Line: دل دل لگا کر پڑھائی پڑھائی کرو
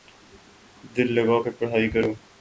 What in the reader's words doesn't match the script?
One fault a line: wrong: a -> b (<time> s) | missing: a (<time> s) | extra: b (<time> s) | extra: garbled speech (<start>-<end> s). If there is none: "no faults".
missing: دل (1.1 s)
missing: پڑھائی (1.9 s)